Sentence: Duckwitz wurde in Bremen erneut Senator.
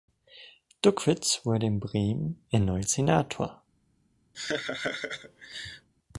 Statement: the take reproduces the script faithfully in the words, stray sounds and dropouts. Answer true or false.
false